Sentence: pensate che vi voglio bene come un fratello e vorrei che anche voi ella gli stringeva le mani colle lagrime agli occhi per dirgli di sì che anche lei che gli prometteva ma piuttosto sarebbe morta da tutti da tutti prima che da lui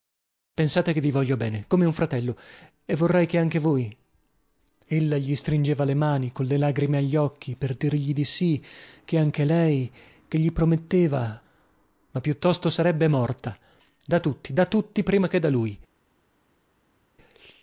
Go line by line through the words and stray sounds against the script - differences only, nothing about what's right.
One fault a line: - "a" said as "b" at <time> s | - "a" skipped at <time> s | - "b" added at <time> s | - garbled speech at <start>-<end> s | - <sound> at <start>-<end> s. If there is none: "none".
none